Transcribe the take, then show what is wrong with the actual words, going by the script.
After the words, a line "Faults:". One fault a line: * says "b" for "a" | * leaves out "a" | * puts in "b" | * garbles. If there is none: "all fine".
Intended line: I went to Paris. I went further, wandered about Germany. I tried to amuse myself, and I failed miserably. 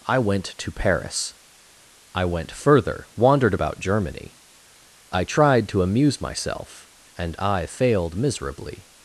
I went to Paris. I went further, wandered about Germany. I tried to amuse myself, and I failed miserably.
Faults:
all fine